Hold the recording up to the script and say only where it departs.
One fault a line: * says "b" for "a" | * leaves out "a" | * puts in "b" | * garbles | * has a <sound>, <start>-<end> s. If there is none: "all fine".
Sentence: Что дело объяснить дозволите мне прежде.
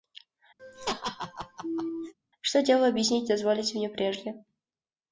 * has a laugh, 0.6-2.1 s